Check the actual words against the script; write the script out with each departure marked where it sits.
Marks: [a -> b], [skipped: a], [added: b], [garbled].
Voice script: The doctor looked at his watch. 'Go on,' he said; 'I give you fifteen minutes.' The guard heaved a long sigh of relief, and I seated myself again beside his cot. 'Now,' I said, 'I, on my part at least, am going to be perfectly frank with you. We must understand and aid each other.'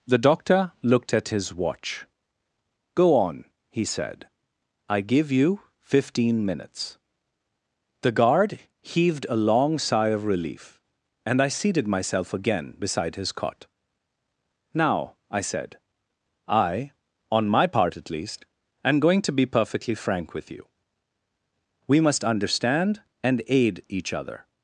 The doctor looked at his watch. 'Go on,' he said; 'I give you fifteen minutes.' The guard heaved a long sigh of relief, and I seated myself again beside his cot. 'Now,' I said, 'I, on my part at least, am going to be perfectly frank with you. We must understand and aid each other.'